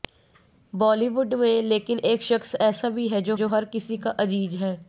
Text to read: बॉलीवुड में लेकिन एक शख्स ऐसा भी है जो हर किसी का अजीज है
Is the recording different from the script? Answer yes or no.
yes